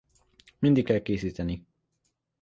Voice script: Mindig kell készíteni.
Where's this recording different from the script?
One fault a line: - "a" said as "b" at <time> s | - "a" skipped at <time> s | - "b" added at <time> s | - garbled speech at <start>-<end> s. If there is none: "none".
none